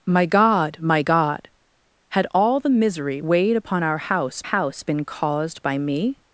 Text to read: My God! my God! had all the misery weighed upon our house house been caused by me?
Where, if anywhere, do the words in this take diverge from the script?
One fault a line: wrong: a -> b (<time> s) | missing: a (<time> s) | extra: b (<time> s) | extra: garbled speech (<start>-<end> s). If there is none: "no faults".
no faults